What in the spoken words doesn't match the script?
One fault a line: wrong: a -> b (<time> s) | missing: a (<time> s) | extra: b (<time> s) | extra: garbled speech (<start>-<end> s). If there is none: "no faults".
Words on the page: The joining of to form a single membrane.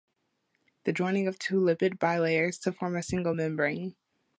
extra: two lipid bilayers (1.4 s)